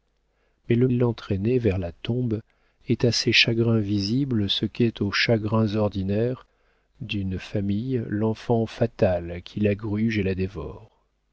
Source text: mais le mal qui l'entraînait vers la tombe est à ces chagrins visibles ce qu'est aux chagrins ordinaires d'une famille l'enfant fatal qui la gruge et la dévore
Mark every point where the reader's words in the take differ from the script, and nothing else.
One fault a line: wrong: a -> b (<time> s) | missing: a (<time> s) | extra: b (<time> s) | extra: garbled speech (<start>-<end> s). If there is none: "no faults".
missing: mal qui (0.9 s)